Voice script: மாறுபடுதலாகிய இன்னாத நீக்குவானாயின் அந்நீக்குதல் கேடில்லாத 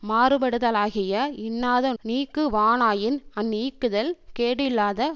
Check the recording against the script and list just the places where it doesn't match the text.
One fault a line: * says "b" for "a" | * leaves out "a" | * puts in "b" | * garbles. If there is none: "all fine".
all fine